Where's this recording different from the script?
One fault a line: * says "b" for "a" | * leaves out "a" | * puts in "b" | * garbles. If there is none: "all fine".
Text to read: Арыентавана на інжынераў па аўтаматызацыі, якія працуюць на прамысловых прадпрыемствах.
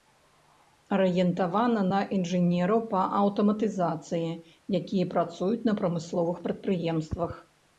all fine